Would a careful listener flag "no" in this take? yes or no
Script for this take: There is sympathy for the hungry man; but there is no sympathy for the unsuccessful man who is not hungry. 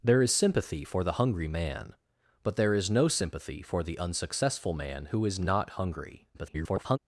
no